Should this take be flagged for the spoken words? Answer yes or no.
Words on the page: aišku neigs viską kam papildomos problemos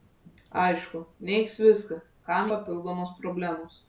no